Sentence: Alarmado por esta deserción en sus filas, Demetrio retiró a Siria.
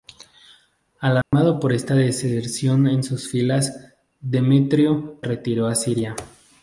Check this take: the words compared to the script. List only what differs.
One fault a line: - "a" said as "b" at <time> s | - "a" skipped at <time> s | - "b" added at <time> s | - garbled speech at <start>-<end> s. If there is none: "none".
none